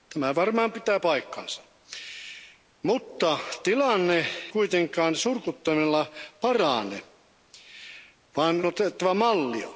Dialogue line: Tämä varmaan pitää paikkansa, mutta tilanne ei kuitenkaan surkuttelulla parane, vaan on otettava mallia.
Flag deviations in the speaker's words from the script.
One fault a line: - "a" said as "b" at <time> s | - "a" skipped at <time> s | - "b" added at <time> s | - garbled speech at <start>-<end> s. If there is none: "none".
- "ei" skipped at 4.3 s
- "on" skipped at 8.6 s